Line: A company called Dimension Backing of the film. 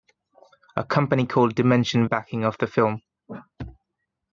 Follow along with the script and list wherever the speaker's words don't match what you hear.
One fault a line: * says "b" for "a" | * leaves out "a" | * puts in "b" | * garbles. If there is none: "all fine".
all fine